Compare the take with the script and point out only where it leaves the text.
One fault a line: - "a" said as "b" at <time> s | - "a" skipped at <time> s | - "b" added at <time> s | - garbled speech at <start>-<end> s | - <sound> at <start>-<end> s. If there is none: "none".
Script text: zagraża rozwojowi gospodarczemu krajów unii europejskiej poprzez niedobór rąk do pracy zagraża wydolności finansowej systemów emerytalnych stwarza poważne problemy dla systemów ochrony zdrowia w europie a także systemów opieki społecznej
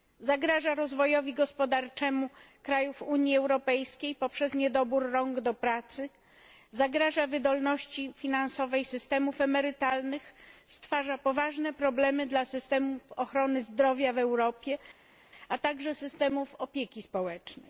none